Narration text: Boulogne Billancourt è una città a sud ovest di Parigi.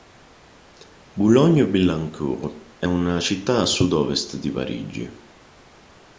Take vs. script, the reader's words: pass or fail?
pass